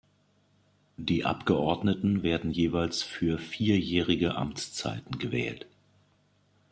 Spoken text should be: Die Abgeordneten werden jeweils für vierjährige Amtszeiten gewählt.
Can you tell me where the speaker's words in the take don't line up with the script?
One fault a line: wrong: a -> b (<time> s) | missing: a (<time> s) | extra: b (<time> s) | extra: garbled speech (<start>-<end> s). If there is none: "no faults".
no faults